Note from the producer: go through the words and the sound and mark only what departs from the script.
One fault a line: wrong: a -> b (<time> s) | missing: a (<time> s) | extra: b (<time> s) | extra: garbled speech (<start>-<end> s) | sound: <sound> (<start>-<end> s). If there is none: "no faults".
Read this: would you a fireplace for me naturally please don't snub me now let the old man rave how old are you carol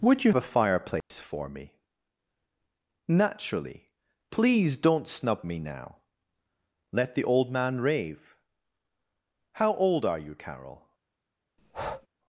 sound: dropout (1.0-1.1 s)
sound: breath (11.6-12.1 s)